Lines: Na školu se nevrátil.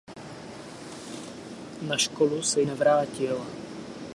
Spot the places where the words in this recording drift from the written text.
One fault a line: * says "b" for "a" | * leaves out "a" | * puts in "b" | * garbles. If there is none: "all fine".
all fine